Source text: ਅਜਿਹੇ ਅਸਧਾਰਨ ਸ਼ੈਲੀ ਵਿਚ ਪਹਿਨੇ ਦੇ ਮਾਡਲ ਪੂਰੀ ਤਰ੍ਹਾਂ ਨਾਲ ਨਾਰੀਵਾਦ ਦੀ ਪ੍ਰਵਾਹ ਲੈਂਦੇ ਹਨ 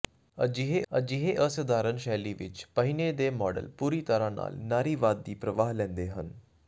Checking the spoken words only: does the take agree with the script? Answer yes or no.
no